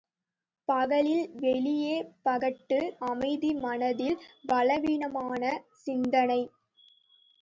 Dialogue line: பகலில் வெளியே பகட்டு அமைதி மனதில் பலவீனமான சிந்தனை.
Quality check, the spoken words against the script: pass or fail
pass